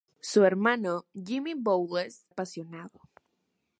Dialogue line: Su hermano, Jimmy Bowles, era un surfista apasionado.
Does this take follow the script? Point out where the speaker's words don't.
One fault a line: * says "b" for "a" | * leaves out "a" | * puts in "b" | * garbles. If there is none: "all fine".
* leaves out "era un surfista"